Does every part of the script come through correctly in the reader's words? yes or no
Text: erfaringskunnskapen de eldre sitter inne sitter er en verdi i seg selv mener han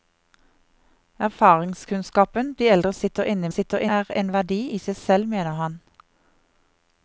yes